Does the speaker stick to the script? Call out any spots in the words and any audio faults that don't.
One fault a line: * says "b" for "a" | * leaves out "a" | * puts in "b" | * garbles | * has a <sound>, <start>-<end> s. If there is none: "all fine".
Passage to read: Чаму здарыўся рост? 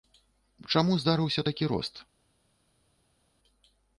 * puts in "такі"